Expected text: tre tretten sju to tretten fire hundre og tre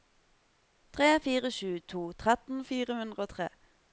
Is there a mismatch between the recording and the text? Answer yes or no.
yes